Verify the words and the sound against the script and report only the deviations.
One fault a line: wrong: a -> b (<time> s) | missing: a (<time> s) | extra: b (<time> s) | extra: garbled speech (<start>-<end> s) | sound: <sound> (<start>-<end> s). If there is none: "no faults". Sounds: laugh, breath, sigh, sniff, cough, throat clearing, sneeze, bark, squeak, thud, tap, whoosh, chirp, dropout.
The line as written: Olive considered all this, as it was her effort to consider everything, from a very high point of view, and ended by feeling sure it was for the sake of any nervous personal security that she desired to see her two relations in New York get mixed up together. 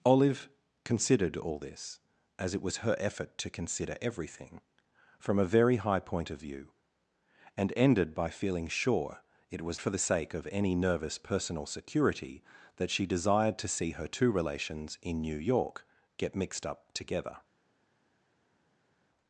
no faults